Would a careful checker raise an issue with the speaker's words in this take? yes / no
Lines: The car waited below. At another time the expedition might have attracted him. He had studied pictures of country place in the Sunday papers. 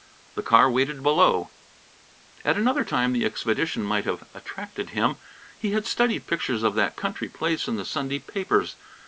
yes